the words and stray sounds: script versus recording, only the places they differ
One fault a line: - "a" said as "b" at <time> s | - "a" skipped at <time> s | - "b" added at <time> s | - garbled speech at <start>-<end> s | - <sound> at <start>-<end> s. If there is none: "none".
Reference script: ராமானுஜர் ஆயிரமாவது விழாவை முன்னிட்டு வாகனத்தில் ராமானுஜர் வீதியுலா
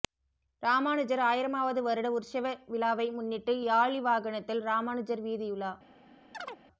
- "வருட உற்சவ" added at 1.8 s
- "யாளி" added at 3.6 s
- chirp at 6.3-6.6 s